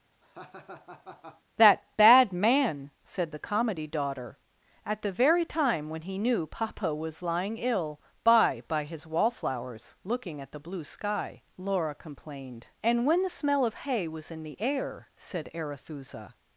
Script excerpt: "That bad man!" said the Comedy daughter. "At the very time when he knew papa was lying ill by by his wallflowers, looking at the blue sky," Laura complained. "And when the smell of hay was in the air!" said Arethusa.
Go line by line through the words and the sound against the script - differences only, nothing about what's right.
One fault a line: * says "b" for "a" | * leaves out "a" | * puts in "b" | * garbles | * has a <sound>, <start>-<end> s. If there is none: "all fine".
* has a laugh, 0.2-1.4 s